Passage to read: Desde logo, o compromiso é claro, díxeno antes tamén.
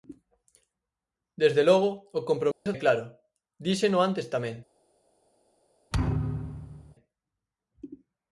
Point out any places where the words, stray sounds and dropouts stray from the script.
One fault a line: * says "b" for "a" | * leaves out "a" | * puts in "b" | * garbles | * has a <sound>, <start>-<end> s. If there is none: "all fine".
* has a dropout, 2.5-2.7 s
* has a thud, 5.9-7.0 s